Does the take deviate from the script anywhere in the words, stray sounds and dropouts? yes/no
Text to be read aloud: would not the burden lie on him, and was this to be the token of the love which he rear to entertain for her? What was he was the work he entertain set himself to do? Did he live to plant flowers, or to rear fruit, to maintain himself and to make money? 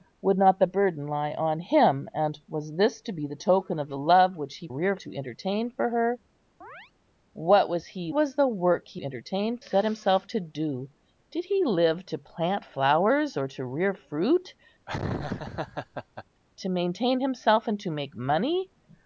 yes